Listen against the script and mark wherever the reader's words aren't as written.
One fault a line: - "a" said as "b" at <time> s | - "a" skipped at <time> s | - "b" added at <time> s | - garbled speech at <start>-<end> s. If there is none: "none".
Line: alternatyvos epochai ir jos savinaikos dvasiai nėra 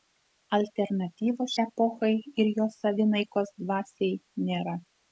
none